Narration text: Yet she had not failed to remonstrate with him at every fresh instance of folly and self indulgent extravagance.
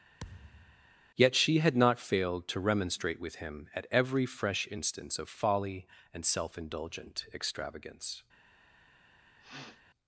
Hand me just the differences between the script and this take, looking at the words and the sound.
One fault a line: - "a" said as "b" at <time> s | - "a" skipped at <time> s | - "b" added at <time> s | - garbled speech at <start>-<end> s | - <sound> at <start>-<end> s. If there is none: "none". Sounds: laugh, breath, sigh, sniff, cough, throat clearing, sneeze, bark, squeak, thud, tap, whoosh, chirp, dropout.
- thud at 0.2-0.9 s
- sniff at 9.4-9.8 s